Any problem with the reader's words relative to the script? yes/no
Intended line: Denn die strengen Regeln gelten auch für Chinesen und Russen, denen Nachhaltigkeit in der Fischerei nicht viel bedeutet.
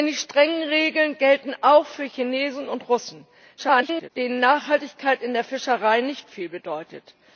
yes